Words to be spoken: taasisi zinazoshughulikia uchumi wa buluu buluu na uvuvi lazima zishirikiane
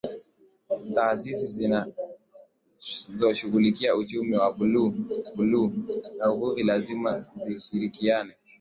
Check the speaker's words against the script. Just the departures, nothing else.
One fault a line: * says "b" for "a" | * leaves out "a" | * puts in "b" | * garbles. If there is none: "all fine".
all fine